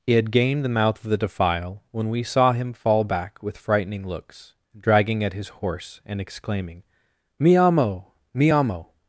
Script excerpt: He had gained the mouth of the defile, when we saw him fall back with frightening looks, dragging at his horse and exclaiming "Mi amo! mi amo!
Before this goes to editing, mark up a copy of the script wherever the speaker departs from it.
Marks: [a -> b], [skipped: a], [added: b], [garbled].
He had gained the mouth of the defile, when we saw him fall back with frightening looks, dragging at his horse and exclaiming "Mi amo! mi amo!